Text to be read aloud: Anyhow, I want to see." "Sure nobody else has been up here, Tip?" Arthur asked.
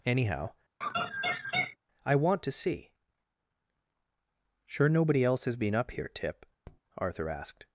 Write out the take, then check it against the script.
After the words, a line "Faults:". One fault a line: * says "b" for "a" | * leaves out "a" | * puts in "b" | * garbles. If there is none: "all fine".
Anyhow, I want to see." "Sure nobody else has been up here, Tip?" Arthur asked.
Faults:
all fine